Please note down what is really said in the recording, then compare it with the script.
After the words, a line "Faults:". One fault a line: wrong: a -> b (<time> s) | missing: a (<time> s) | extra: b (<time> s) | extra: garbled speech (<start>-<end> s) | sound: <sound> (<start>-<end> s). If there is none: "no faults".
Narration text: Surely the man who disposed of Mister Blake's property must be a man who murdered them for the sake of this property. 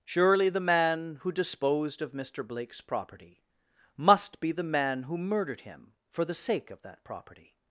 Surely the man who disposed of Mister Blake's property must be the man who murdered him for the sake of that property.
Faults:
wrong: a -> the (4.5 s)
wrong: them -> him (5.6 s)
wrong: this -> that (6.8 s)